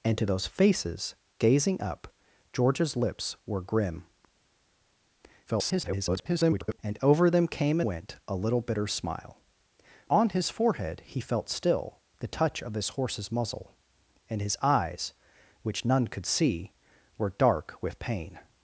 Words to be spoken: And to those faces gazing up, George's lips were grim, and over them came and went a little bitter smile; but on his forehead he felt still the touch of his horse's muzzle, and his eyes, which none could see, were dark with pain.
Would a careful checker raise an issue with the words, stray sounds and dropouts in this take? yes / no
yes